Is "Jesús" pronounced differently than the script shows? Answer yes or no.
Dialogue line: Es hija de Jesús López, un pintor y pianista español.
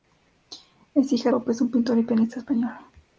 yes